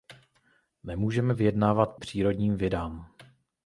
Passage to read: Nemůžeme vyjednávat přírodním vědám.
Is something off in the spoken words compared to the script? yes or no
no